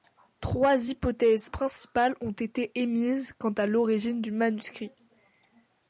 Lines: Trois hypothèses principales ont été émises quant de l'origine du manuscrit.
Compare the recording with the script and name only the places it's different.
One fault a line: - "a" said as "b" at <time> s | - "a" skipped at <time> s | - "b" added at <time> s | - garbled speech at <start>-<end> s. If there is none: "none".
- "de" said as "à" at 3.5 s